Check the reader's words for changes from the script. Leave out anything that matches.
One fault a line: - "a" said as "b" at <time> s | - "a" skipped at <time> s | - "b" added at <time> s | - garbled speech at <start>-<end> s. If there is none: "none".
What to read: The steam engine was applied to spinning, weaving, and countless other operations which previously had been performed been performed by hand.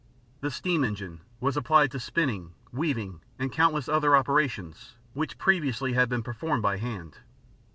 - "been performed" skipped at 6.6 s